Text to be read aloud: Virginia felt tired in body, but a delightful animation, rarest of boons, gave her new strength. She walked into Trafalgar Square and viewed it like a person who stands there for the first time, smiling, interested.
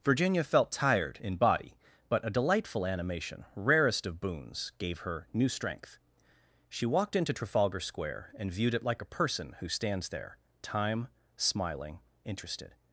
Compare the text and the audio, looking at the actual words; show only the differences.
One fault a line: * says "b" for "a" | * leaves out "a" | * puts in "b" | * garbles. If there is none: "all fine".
* leaves out "for the first"